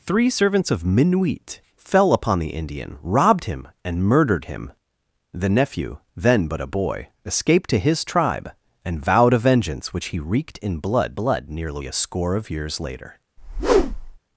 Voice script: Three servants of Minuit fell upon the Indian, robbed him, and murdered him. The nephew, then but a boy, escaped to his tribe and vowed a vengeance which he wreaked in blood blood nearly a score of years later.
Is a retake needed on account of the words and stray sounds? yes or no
yes